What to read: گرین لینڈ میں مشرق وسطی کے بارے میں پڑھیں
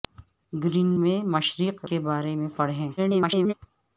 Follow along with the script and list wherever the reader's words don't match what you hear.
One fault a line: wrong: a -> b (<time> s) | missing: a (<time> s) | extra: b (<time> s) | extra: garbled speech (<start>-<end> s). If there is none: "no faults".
missing: لینڈ (0.9 s)
missing: وسطی (1.8 s)
extra: garbled speech (3.0-3.5 s)